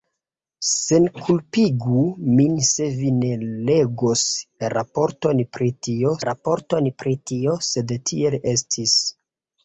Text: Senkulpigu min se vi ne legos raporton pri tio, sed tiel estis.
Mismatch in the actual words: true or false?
true